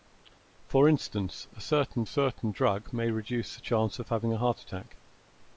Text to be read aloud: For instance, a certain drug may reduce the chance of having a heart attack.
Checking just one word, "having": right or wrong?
right